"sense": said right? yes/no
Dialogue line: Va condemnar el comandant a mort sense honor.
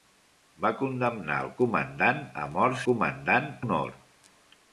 no